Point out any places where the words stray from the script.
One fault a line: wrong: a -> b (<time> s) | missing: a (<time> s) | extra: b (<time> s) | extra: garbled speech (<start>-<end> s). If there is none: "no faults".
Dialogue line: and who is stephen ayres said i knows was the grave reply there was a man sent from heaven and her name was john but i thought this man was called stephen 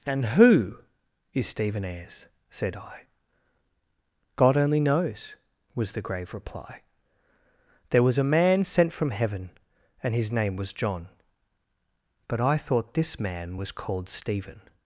extra: god only (4.3 s)
wrong: her -> his (10.2 s)